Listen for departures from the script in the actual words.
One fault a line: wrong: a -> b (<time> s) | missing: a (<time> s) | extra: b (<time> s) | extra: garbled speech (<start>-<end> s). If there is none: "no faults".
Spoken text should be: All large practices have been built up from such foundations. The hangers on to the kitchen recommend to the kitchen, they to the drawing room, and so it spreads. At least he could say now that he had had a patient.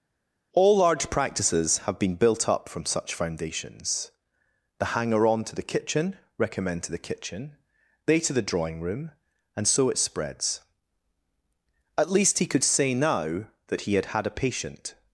wrong: hangers -> hanger (4.9 s)